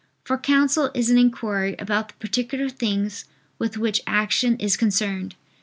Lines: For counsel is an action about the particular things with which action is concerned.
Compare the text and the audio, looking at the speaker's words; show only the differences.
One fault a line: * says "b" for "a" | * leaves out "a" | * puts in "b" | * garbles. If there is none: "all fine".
* says "inquiry" for "action"